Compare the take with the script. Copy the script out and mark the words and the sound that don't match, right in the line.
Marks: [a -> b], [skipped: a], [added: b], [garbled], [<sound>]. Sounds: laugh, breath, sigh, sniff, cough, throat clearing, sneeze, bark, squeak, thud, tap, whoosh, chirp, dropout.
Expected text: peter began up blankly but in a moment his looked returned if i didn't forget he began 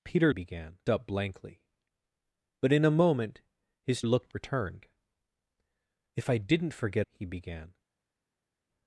peter began up blankly but in a moment his looked returned if i didn't forget he began